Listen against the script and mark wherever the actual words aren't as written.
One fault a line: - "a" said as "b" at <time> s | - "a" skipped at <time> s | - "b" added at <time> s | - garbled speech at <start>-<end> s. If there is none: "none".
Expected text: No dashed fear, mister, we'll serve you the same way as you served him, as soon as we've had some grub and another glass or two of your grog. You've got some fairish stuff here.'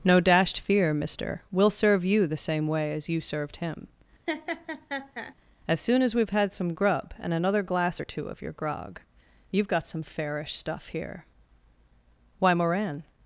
- "Why Moran" added at 12.4 s